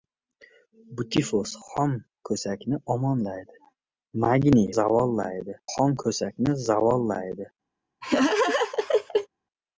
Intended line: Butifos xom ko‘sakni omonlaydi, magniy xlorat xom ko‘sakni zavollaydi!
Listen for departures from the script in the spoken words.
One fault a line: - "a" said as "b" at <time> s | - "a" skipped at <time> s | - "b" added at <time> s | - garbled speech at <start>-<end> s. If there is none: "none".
- "xlorat" said as "zavollaydi" at 4.7 s